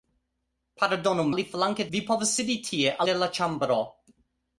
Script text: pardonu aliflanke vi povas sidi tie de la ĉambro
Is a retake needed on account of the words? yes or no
no